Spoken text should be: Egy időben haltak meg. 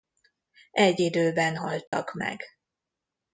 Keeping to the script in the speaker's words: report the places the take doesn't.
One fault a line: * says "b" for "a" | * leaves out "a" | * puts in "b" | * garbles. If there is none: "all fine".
all fine